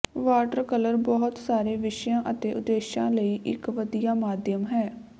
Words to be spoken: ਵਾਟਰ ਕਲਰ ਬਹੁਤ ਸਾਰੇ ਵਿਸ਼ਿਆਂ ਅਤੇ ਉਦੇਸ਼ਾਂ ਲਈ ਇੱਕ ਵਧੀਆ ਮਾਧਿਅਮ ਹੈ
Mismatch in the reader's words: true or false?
false